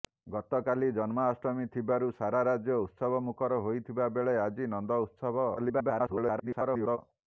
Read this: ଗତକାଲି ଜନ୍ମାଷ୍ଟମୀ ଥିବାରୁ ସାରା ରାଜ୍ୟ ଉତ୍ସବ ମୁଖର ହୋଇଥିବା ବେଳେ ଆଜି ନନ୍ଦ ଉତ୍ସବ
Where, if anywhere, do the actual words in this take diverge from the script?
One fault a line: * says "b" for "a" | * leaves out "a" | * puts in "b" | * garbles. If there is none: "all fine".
* garbles